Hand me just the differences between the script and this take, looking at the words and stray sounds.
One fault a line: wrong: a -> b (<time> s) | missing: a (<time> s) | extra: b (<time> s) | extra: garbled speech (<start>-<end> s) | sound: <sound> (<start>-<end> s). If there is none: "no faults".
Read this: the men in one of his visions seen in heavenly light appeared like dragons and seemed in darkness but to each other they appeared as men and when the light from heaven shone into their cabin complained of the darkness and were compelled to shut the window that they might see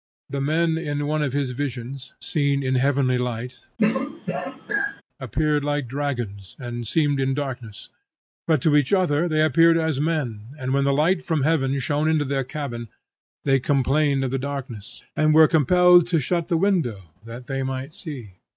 sound: throat clearing (3.8-5.0 s)
extra: they (13.5 s)